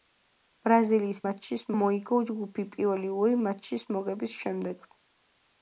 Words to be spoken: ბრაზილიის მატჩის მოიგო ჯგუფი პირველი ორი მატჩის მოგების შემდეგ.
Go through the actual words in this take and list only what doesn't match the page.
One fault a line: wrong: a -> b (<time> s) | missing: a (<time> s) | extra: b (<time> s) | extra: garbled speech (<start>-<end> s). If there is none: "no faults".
no faults